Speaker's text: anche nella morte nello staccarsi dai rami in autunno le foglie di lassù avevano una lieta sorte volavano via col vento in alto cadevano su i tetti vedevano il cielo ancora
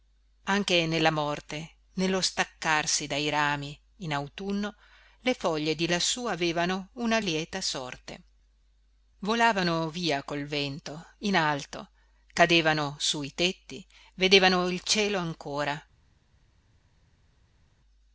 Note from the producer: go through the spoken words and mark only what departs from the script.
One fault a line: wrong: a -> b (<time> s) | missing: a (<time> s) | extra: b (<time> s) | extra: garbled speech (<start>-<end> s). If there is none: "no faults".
no faults